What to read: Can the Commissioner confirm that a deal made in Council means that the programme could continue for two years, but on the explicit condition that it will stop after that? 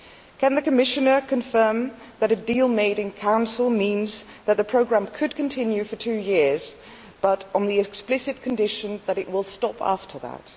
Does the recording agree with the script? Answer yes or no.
yes